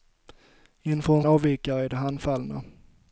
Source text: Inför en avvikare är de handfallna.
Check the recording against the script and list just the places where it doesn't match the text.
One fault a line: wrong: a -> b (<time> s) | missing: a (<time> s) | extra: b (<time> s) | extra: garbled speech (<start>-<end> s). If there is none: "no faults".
no faults